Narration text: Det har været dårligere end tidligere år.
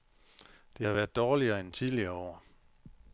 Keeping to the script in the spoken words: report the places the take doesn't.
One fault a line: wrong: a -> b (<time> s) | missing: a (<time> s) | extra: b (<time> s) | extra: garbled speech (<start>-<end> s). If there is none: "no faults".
no faults